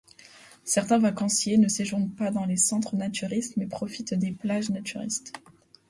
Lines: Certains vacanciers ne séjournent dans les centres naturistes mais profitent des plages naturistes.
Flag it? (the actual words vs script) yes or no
yes